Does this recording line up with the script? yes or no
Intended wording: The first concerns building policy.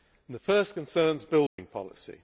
yes